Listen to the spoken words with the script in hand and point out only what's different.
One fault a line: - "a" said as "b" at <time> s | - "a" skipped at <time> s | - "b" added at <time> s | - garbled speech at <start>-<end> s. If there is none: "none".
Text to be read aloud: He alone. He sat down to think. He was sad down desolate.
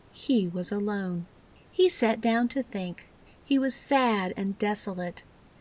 - "was" added at 0.5 s
- "down" said as "and" at 4.3 s